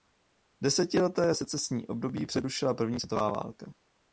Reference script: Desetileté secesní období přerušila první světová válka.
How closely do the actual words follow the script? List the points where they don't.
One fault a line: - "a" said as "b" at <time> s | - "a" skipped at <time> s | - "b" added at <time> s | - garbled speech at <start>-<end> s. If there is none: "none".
none